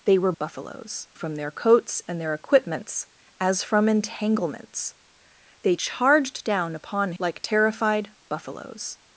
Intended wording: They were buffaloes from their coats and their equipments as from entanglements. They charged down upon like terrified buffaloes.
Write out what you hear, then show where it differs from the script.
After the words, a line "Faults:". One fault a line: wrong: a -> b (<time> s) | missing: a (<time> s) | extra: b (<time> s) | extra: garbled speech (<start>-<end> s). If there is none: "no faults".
They were buffaloes from their coats and their equipments as from entanglements. They charged down upon like terrified buffaloes.
Faults:
no faults